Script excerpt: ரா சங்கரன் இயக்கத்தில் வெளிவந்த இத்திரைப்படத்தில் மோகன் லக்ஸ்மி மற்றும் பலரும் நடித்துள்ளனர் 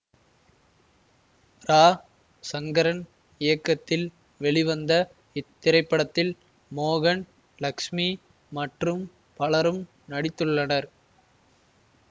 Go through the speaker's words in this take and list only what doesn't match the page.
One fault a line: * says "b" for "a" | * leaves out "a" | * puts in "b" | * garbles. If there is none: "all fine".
all fine